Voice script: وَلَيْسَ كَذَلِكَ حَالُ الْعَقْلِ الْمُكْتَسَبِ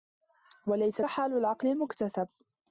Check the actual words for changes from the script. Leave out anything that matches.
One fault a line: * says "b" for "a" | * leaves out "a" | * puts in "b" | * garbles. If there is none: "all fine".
* leaves out "كَذَلِكَ"